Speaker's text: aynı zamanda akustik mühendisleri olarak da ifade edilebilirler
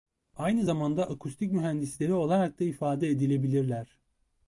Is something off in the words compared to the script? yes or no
no